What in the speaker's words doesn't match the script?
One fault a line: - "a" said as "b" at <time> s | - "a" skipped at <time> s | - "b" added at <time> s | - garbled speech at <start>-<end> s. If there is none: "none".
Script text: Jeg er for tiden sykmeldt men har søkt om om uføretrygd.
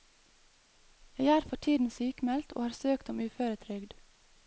- "men" said as "og" at 2.5 s
- "om" skipped at 3.2 s